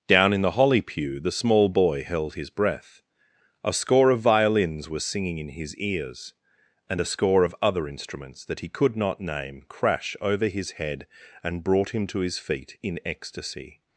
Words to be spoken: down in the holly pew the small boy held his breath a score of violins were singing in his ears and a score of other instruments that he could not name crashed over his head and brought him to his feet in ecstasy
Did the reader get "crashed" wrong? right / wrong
wrong